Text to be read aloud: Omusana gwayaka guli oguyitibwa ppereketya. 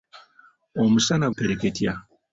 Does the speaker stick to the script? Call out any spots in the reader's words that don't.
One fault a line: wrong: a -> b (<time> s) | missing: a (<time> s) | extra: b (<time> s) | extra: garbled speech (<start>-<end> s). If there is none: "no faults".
missing: gwayaka guli oguyitibwa (1.3 s)